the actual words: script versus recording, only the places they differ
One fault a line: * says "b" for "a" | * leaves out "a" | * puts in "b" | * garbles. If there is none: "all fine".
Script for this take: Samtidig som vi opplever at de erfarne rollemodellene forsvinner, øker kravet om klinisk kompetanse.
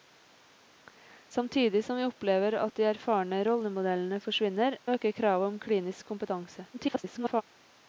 * garbles